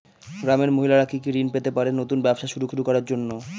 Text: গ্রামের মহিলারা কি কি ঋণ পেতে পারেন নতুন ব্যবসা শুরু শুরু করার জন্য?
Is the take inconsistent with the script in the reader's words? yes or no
no